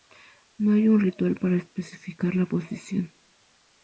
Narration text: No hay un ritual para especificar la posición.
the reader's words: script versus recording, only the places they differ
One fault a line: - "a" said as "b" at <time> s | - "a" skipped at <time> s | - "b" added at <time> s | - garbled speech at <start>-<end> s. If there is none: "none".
none